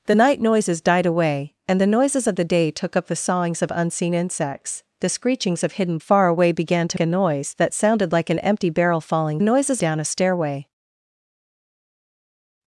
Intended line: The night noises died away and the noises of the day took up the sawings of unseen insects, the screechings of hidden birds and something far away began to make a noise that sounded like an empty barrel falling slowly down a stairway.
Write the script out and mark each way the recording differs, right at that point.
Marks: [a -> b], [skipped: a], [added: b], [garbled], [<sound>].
The night noises died away and the noises of the day took up the sawings of unseen insects, the screechings of hidden [skipped: birds and something] far away began to [skipped: make] a noise that sounded like an empty barrel falling [slowly -> noises] down a stairway.